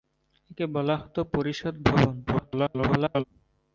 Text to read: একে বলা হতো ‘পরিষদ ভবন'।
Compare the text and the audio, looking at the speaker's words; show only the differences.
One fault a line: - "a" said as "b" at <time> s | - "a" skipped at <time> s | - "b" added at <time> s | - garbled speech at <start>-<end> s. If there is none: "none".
- garbled speech at 2.3-3.2 s